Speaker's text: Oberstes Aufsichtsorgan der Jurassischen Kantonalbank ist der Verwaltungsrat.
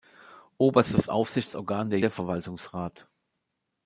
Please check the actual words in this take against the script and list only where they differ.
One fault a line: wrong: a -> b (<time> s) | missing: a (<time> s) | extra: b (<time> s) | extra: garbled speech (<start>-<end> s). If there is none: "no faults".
missing: Jurassischen Kantonalbank ist (2.0 s)